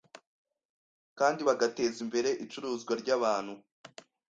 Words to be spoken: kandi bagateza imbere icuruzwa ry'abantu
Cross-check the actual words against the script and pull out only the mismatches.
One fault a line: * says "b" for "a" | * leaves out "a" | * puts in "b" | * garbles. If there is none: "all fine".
all fine